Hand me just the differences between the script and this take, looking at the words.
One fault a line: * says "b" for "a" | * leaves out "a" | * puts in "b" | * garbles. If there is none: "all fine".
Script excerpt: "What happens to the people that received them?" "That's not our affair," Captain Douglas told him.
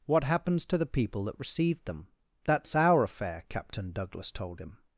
* leaves out "not"